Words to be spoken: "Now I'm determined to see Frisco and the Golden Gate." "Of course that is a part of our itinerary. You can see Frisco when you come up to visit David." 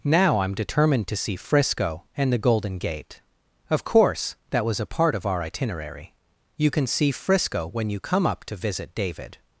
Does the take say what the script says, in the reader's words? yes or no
no